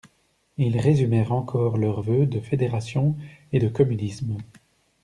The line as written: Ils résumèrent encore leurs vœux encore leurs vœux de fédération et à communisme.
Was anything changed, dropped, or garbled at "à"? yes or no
yes